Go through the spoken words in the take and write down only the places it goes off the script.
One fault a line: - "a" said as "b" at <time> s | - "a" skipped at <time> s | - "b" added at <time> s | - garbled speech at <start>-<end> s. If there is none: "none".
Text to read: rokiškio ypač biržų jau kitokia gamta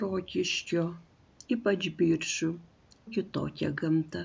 - "jau" skipped at 2.5 s